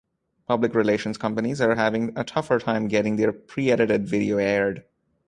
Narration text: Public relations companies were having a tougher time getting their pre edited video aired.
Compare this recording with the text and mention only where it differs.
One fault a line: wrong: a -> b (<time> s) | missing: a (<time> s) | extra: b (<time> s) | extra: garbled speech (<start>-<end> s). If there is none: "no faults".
wrong: were -> are (1.6 s)